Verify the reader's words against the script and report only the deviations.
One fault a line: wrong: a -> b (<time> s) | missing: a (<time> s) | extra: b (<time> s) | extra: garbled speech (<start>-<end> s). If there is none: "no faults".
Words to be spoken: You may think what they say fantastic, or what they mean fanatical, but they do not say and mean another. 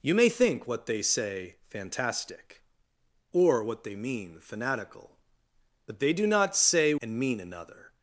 no faults